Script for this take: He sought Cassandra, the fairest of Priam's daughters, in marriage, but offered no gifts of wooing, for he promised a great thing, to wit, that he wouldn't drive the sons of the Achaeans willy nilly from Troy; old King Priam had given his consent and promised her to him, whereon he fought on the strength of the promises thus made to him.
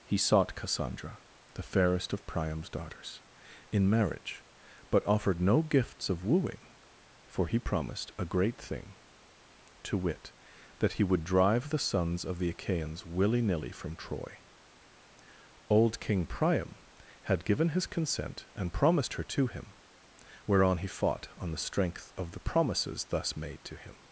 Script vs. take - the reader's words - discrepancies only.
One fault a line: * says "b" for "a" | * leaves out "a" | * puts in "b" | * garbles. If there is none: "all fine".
* says "would" for "wouldn't"